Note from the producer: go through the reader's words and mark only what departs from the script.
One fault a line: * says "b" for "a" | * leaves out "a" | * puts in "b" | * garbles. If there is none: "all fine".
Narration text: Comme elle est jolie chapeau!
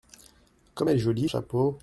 all fine